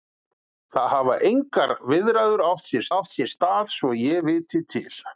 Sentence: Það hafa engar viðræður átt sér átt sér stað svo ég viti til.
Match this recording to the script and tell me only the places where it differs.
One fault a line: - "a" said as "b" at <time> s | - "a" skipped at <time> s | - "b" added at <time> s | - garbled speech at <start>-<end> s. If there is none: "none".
none